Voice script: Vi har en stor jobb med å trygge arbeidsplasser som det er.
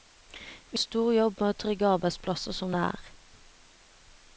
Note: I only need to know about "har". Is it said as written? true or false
false